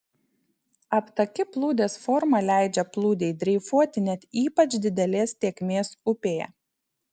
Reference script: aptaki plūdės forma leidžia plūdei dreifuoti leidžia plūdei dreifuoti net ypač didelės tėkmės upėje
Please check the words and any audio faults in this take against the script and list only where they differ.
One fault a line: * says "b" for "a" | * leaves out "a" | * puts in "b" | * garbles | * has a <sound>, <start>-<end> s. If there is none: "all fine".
* leaves out "leidžia plūdei dreifuoti"